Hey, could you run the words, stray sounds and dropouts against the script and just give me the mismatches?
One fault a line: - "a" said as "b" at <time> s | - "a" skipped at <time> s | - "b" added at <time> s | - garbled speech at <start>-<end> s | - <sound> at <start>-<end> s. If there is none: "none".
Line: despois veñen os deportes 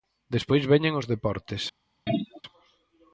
- throat clearing at 2.1-2.4 s